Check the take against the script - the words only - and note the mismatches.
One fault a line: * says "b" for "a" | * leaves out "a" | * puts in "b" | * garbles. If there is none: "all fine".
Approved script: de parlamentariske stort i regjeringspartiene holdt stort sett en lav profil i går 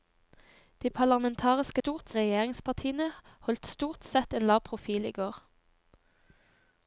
all fine